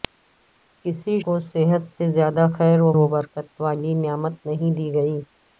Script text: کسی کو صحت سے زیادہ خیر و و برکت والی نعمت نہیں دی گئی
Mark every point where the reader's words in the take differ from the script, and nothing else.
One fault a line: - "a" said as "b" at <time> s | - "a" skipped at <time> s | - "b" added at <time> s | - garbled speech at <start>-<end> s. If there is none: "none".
none